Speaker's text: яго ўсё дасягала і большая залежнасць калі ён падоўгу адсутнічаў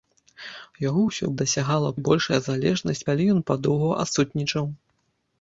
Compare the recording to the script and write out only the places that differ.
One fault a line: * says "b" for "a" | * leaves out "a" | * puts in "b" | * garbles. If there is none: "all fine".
all fine